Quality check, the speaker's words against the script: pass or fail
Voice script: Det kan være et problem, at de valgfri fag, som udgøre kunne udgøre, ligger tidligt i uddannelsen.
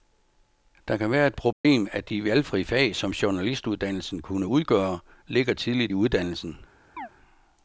fail